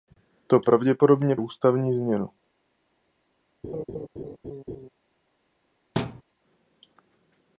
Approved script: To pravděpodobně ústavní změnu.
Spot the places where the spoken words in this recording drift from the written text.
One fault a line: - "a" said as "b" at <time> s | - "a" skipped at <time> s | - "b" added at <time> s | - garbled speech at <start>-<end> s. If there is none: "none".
none